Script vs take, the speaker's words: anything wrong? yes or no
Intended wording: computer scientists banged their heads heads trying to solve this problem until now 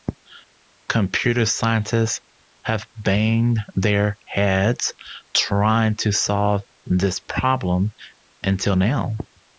yes